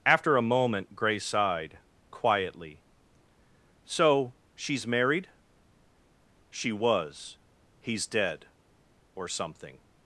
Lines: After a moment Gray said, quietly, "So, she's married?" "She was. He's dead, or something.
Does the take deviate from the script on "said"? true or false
true